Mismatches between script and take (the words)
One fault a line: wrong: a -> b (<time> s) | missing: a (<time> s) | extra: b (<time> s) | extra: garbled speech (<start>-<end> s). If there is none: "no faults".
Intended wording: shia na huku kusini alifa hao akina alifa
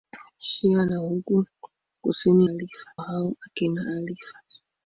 no faults